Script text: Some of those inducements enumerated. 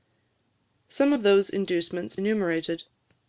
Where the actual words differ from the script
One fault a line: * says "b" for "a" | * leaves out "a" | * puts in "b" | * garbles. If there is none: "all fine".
all fine